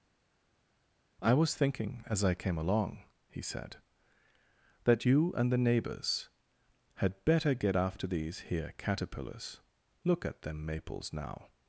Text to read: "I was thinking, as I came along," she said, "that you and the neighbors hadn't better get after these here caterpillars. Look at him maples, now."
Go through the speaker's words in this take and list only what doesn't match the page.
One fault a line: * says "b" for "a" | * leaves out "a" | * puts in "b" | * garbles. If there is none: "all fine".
* says "he" for "she"
* says "had" for "hadn't"
* says "them" for "him"